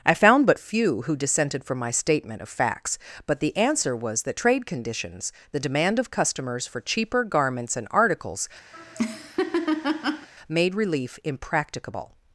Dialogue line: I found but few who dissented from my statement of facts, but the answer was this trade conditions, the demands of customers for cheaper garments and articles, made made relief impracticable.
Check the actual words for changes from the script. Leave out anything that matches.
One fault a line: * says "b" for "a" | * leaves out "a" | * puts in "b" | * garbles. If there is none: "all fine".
* says "that" for "this"
* says "demand" for "demands"
* leaves out "made"